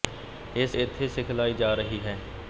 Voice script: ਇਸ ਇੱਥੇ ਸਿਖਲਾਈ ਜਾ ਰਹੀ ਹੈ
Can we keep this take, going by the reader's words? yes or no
yes